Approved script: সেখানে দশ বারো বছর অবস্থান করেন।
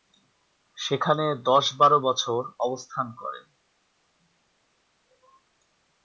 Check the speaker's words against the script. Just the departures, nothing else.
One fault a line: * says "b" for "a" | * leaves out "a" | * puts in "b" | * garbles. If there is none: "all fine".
all fine